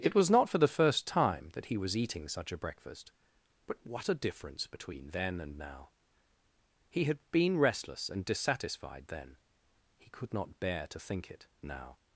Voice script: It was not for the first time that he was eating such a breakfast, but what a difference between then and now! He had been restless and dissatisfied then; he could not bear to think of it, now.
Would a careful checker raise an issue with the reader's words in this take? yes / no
yes